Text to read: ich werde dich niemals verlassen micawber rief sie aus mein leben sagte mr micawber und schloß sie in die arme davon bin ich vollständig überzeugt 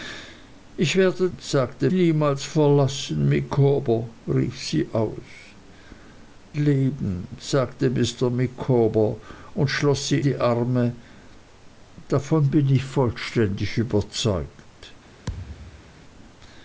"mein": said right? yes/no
no